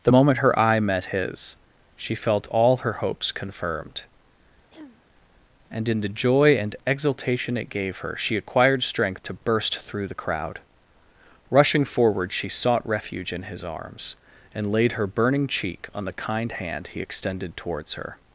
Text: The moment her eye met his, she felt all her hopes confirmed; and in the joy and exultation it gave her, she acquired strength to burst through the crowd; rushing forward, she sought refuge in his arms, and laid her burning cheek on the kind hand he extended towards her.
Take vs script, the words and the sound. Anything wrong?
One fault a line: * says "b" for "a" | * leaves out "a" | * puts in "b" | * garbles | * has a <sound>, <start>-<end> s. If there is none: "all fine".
* has a throat clearing, 4.7-5.0 s